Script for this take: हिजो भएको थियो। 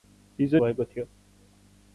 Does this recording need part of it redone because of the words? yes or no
no